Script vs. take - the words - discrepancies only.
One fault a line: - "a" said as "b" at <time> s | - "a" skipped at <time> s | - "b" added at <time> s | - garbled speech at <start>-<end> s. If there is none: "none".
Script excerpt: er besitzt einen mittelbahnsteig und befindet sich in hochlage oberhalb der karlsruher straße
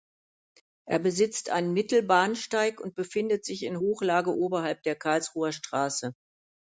none